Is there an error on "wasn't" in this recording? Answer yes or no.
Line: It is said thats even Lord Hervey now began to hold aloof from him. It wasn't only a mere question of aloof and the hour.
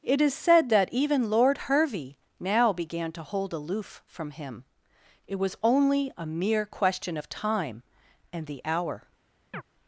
yes